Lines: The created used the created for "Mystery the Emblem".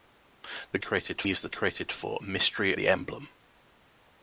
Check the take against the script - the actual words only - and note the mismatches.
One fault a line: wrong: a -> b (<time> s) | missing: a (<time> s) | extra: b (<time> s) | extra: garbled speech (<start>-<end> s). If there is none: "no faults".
no faults